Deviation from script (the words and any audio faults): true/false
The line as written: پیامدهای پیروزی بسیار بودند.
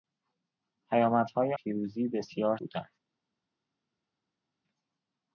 false